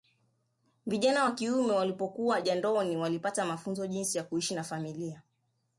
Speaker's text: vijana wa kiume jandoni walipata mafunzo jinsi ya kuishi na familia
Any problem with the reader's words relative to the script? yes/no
yes